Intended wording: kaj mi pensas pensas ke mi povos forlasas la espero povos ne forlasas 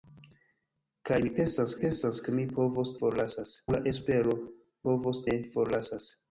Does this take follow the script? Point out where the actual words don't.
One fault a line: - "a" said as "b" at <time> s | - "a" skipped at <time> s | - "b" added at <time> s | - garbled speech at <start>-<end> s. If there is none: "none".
none